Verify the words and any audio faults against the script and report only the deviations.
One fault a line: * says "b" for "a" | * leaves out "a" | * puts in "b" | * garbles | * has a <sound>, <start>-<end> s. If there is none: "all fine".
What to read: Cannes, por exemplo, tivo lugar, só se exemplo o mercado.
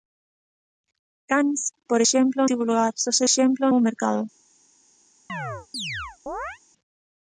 * has a chirp, 5.3-6.6 s